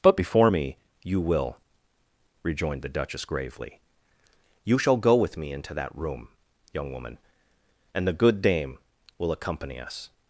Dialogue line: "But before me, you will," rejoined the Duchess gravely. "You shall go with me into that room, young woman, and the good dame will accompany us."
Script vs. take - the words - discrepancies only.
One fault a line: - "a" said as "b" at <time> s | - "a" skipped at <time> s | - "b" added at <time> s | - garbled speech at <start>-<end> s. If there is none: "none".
none